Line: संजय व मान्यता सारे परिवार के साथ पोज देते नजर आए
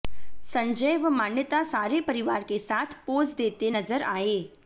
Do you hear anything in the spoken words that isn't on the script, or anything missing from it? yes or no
no